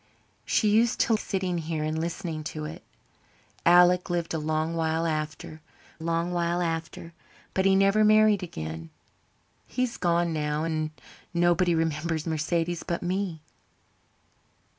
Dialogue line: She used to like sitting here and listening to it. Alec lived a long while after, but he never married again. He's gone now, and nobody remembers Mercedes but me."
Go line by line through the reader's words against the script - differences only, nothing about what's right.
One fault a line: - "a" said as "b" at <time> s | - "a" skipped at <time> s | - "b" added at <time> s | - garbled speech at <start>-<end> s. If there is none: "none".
- "like" skipped at 1.1 s
- "long while after" added at 6.0 s